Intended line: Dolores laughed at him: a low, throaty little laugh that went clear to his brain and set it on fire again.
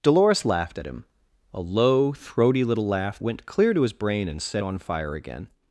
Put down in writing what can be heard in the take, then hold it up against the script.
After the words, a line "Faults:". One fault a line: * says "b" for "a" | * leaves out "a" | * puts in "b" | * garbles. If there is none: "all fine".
Dolores laughed at him: a low, throaty little laugh went clear to his brain and set on fire again.
Faults:
* leaves out "that"
* leaves out "it"